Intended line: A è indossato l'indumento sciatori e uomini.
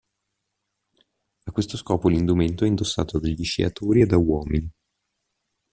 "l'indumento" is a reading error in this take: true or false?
true